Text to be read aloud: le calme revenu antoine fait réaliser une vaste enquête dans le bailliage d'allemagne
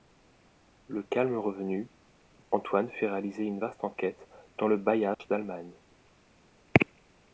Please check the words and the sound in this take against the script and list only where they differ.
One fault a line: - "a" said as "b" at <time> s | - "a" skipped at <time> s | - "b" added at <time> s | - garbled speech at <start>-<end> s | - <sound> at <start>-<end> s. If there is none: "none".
- dropout at 5.1-5.2 s